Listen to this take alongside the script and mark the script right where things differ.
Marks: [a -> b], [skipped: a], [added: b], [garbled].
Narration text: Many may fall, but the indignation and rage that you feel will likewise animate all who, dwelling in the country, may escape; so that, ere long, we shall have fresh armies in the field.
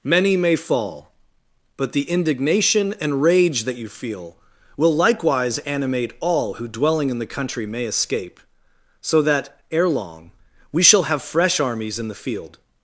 Many may fall, but the indignation and rage that you feel will likewise animate all who, dwelling in the country, may escape; so that, ere long, we shall have fresh armies in the field.